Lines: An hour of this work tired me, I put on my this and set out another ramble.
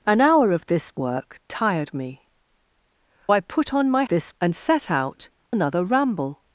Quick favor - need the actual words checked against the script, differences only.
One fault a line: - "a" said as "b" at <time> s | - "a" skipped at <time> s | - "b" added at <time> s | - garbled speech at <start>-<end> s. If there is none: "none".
none